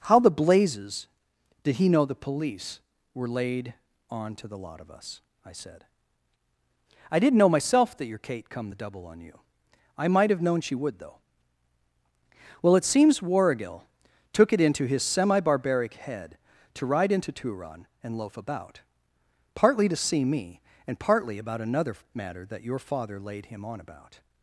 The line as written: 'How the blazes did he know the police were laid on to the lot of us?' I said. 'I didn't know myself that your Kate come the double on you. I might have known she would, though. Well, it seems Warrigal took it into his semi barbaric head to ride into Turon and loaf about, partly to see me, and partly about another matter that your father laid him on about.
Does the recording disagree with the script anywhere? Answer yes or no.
no